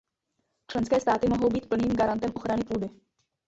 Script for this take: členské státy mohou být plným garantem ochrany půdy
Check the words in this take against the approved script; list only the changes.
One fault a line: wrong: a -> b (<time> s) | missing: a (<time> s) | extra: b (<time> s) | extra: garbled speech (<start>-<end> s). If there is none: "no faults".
no faults